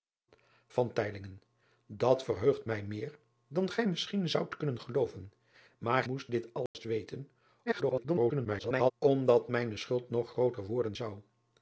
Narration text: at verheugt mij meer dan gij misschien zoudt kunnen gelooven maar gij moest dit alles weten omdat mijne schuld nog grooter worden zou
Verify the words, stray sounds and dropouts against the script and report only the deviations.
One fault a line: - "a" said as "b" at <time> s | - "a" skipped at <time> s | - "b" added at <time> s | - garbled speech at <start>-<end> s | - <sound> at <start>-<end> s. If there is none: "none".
- "gij" skipped at 6.0 s
- dropout at 6.7-6.7 s
- garbled speech at 7.7-8.9 s